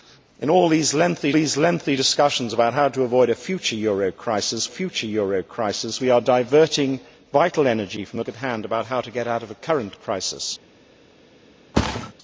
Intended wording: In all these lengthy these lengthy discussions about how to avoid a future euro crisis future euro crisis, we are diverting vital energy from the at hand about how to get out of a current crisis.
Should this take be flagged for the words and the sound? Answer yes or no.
yes